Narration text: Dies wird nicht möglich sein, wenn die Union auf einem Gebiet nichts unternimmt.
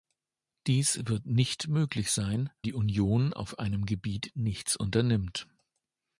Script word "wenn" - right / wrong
wrong